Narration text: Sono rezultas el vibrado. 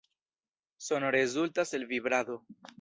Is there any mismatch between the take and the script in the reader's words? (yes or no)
no